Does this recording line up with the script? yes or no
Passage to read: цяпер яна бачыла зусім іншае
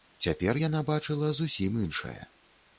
yes